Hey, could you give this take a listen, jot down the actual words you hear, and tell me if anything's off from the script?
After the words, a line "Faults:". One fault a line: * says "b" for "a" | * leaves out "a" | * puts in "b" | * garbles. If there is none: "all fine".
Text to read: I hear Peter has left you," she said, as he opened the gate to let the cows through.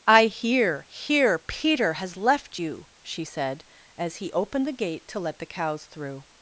I hear hear Peter has left you," she said, as he opened the gate to let the cows through.
Faults:
* puts in "hear"